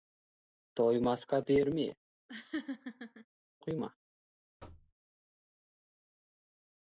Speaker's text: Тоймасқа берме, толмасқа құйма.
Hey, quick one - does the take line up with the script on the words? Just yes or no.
no